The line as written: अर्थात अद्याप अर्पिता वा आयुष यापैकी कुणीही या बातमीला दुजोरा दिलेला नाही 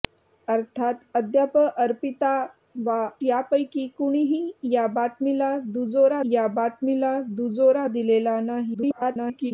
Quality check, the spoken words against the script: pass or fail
fail